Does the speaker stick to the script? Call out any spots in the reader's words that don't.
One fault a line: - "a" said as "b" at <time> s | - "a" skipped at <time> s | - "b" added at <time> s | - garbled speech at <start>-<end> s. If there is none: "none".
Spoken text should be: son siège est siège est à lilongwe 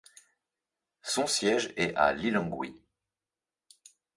- "siège est" skipped at 1.9 s